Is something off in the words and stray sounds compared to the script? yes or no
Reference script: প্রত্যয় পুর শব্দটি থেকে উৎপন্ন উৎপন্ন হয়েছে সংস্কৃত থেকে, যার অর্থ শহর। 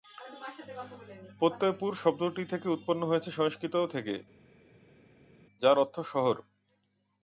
yes